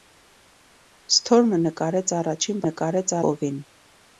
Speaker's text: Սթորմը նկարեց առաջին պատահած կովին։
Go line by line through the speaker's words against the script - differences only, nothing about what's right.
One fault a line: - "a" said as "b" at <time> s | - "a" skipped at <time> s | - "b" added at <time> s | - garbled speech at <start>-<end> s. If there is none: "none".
- "պատահած" said as "նկարեց" at 2.7 s